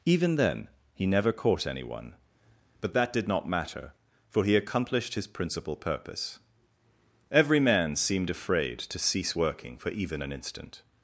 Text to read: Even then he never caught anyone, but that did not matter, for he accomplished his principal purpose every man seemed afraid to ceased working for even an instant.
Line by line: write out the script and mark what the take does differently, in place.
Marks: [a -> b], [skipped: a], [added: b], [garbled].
Even then he never caught anyone, but that did not matter, for he accomplished his principal purpose every man seemed afraid to [ceased -> cease] working for even an instant.